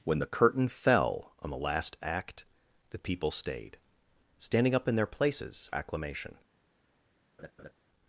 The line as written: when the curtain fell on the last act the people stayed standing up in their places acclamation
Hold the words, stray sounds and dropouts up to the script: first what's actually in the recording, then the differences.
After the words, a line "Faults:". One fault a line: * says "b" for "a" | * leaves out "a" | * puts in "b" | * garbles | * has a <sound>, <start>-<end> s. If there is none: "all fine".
when the curtain fell on the last act the people stayed standing up in their places acclamation
Faults:
* has a laugh, 7.4-7.7 s